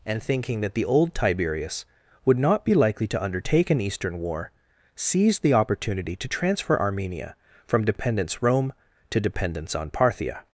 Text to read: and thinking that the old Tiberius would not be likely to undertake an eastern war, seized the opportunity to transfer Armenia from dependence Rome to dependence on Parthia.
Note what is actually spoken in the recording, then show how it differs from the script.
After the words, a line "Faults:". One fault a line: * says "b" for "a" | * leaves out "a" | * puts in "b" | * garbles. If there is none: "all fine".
and thinking that the old Tiberius would not be likely to undertake an eastern war, seized the opportunity to transfer Armenia from dependence Rome to dependence on Parthia.
Faults:
all fine